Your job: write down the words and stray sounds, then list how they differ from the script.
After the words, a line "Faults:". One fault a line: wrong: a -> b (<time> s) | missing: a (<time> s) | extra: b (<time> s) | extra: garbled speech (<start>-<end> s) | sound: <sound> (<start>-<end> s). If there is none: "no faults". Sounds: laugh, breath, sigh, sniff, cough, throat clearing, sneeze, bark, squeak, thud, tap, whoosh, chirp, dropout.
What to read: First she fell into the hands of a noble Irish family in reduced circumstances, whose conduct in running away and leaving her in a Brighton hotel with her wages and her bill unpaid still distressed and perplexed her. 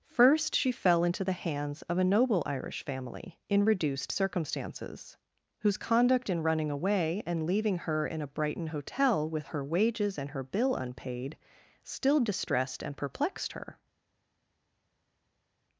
First she fell into the hands of a noble Irish family in reduced circumstances, whose conduct in running away and leaving her in a Brighton hotel with her wages and her bill unpaid still distressed and perplexed her.
Faults:
no faults